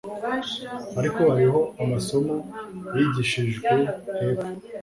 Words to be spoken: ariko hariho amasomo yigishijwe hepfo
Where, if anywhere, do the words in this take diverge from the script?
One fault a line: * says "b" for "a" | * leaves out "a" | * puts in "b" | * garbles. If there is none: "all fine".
all fine